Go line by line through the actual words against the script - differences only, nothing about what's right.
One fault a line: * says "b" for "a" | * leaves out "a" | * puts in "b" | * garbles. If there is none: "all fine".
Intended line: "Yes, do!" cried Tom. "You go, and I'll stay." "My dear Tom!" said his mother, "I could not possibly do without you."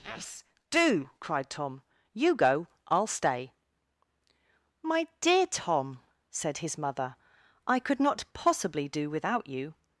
* leaves out "and"